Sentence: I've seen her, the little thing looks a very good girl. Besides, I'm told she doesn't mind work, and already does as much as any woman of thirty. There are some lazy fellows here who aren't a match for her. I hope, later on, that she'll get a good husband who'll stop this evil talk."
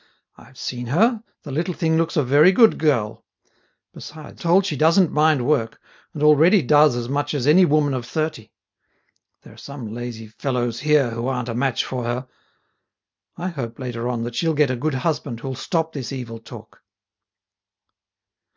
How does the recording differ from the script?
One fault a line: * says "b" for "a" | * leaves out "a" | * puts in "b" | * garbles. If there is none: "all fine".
* leaves out "I'm"